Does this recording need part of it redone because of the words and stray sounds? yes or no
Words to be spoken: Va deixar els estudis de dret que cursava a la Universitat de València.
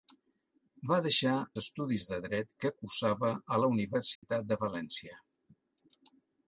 yes